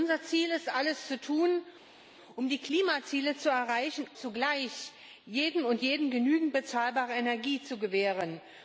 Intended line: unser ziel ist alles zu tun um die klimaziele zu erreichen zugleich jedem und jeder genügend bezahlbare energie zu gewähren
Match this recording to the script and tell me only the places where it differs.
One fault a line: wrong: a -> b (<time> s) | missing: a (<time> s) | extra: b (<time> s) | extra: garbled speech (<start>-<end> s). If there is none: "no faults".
no faults